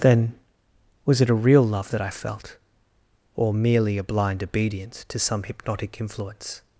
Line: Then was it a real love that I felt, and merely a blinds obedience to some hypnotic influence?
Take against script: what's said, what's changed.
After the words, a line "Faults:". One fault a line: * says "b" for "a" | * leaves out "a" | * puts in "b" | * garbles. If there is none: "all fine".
Then was it a real love that I felt, or merely a blind obedience to some hypnotic influence?
Faults:
* says "or" for "and"
* says "blind" for "blinds"